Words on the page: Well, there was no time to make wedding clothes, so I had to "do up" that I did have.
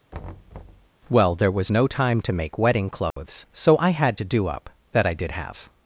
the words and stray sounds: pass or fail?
fail